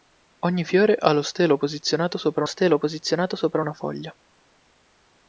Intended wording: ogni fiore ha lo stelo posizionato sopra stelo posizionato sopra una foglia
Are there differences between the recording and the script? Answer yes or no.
no